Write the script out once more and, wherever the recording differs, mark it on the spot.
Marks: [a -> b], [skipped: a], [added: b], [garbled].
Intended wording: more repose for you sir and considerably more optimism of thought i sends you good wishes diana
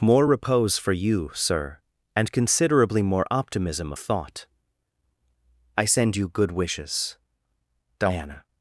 more repose for you sir and considerably more optimism of thought i [sends -> send] you good wishes diana